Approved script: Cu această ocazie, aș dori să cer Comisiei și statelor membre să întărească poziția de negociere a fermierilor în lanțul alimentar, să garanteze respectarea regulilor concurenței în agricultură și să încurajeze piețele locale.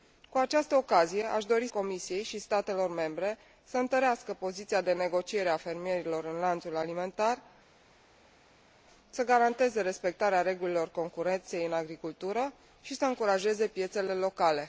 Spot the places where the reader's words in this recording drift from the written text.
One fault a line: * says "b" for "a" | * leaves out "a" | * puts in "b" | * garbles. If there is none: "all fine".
* leaves out "să cer"